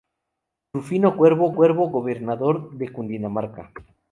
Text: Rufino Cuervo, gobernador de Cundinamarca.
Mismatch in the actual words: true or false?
true